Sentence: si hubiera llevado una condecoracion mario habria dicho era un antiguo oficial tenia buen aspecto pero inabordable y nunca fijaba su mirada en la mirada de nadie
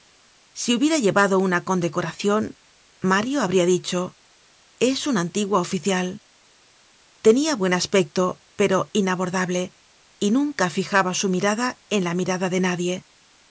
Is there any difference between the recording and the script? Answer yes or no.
yes